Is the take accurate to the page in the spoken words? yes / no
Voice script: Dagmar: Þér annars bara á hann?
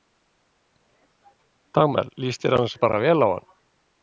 no